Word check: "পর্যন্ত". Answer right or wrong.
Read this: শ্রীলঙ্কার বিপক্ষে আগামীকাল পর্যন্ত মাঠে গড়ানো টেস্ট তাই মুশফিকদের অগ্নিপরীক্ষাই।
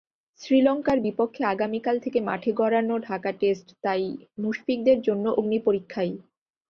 wrong